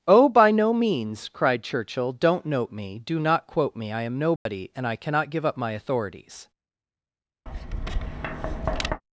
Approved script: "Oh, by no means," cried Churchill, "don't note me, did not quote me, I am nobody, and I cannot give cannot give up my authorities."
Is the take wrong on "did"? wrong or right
wrong